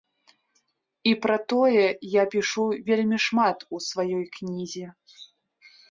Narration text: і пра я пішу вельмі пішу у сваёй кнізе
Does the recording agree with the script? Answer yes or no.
no